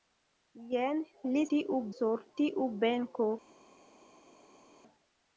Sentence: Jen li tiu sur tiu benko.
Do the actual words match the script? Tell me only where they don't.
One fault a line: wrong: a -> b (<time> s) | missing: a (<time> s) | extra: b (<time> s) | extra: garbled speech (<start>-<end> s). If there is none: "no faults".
no faults